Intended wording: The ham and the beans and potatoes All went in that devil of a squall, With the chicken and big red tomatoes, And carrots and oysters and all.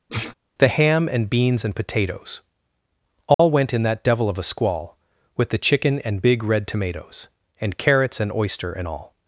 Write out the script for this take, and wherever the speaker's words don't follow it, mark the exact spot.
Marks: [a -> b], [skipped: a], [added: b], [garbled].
The ham and [skipped: the] beans and potatoes All went in that devil of a squall, With the chicken and big red tomatoes, And carrots and [oysters -> oyster] and all.